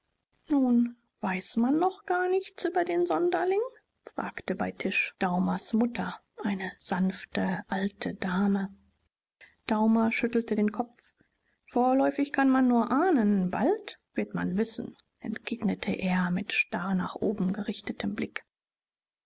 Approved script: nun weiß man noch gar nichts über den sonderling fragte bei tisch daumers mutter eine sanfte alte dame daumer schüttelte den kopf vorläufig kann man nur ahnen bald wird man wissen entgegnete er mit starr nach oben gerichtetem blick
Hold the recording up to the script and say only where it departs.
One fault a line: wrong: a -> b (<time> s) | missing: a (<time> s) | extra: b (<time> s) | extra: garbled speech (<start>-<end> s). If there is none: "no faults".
no faults